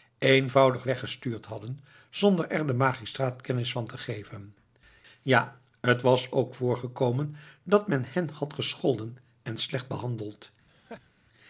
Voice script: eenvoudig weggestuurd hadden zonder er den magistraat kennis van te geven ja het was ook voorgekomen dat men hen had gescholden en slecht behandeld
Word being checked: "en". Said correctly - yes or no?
yes